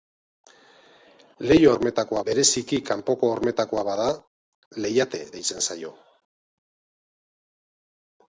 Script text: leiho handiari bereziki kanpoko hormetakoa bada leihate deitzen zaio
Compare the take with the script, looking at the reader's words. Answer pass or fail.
fail